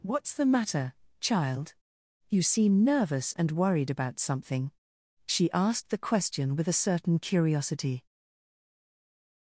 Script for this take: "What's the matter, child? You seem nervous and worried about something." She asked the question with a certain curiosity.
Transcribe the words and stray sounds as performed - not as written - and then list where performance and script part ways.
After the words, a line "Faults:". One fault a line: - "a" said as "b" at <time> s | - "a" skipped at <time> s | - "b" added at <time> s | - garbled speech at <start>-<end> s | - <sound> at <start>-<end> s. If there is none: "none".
"What's the matter, child? You seem nervous and worried about something." She asked the question with a certain curiosity.
Faults:
none